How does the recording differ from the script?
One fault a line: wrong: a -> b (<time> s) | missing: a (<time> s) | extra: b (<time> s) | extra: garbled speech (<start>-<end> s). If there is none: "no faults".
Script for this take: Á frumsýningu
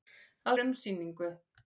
no faults